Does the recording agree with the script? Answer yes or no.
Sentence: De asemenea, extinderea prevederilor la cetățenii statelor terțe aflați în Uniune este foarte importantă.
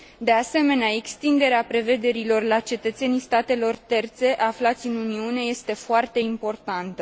yes